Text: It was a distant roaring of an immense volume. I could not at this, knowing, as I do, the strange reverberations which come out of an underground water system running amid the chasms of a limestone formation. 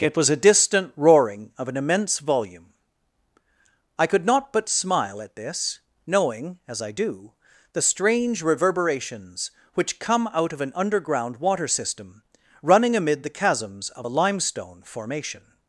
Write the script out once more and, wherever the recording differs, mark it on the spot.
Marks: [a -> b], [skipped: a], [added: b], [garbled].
It was a distant roaring of an immense volume. I could not [added: but smile] at this, knowing, as I do, the strange reverberations which come out of an underground water system running amid the chasms of a limestone formation.